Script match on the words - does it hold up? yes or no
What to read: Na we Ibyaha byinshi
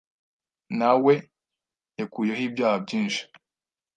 no